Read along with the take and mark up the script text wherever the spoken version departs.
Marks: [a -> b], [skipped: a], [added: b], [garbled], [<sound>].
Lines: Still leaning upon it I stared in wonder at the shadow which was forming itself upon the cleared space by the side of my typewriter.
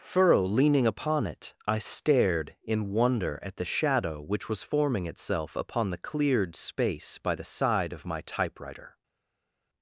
[Still -> Furrow] leaning upon it I stared in wonder at the shadow which was forming itself upon the cleared space by the side of my typewriter.